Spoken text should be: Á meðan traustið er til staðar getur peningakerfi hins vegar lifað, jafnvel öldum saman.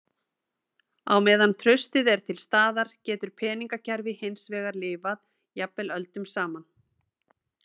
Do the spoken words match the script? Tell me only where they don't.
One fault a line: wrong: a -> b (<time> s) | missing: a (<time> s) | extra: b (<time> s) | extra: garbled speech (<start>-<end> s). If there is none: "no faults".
no faults